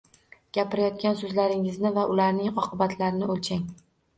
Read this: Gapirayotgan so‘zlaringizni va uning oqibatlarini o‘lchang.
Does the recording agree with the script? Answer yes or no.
no